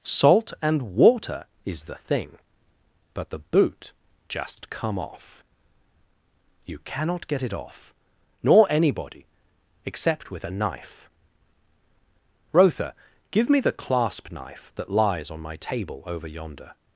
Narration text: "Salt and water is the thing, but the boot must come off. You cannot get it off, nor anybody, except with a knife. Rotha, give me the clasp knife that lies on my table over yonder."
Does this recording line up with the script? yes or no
no